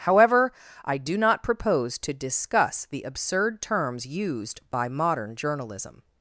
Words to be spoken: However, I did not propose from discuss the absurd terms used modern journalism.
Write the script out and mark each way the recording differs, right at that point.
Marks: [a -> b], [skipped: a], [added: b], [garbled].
However, I [did -> do] not propose [from -> to] discuss the absurd terms used [added: by] modern journalism.